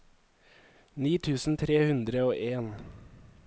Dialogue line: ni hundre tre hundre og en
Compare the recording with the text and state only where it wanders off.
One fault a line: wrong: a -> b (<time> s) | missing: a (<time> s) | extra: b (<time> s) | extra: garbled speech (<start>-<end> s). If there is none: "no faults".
wrong: hundre -> tusen (1.3 s)